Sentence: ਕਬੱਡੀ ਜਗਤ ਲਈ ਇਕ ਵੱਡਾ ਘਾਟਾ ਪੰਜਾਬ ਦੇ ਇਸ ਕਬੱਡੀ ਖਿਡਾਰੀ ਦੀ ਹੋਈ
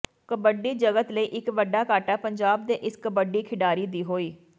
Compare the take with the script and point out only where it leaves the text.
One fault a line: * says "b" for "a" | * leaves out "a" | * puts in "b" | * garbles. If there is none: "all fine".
all fine